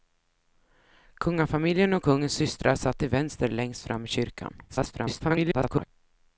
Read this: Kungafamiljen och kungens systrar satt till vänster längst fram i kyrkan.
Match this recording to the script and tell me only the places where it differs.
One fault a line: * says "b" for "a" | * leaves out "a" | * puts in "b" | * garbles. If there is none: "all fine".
* garbles